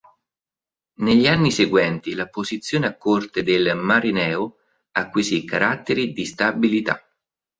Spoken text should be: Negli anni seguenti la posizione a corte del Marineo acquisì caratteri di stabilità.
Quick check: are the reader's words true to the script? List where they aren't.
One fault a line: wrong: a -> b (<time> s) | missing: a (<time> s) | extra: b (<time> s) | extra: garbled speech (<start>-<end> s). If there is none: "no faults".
no faults